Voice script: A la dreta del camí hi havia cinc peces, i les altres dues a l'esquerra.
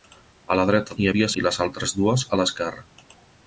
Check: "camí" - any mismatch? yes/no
yes